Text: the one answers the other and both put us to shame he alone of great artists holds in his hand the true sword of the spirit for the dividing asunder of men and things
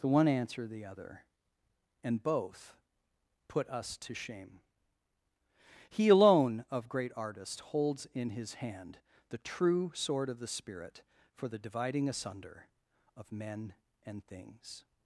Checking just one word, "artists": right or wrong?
wrong